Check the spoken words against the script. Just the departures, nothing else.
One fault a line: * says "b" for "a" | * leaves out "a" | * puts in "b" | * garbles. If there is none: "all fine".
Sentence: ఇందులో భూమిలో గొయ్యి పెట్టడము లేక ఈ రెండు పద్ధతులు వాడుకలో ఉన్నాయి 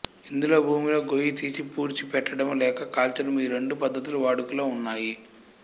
* puts in "తీసి పూడ్చి"
* puts in "కాల్చడము"